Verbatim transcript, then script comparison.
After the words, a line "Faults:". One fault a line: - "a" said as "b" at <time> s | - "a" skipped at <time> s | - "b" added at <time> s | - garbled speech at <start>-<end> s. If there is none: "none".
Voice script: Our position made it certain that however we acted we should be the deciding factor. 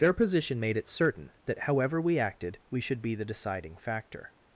Their position made it certain that however we acted we should be the deciding factor.
Faults:
- "Our" said as "Their" at 0.0 s